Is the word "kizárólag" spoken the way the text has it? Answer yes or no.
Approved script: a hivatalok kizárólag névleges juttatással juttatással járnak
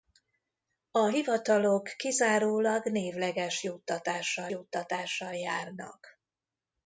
yes